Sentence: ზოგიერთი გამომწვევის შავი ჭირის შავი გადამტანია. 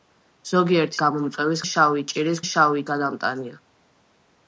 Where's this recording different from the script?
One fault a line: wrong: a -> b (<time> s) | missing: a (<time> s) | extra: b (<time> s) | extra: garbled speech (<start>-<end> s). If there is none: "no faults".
no faults